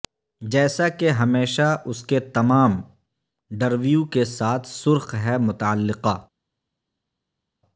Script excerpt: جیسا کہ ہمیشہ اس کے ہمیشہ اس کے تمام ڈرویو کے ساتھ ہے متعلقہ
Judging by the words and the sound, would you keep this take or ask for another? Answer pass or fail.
fail